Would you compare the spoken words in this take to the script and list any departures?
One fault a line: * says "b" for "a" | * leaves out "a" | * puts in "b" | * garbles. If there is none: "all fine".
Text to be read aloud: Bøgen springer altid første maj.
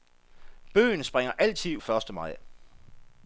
all fine